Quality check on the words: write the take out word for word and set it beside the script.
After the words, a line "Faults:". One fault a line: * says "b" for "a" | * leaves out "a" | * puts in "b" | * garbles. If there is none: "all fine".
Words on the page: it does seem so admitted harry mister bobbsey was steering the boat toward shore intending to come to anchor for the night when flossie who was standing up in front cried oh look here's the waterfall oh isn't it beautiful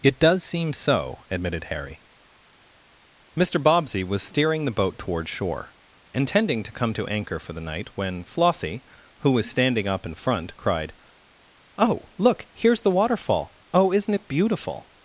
it does seem so admitted harry mister bobbsey was steering the boat toward shore intending to come to anchor for the night when flossie who was standing up in front cried oh look here's the waterfall oh isn't it beautiful
Faults:
all fine